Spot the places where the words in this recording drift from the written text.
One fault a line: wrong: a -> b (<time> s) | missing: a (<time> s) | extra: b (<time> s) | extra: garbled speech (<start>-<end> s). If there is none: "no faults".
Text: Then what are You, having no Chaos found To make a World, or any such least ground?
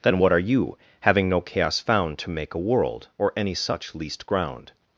no faults